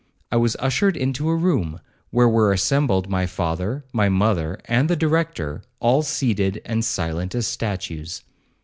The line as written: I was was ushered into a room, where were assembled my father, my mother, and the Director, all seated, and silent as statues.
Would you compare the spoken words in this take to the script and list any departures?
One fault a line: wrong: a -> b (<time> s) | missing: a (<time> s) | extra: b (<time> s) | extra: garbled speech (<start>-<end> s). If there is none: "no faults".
missing: was (0.6 s)